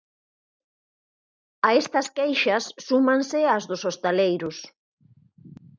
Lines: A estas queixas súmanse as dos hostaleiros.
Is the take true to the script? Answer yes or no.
yes